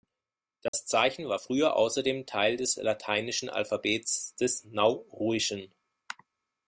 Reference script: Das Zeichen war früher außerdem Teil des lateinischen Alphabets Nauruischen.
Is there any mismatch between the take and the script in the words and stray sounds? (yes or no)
yes